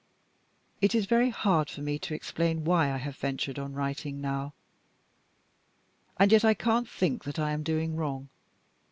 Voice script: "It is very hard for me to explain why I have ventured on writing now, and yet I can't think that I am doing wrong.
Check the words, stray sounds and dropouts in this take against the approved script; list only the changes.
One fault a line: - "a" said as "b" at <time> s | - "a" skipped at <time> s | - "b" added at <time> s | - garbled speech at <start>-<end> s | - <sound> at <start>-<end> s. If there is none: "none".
none